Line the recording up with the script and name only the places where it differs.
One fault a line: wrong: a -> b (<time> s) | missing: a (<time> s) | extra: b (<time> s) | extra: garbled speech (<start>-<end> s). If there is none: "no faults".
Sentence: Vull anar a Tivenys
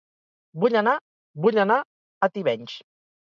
extra: vull anar (1.4 s)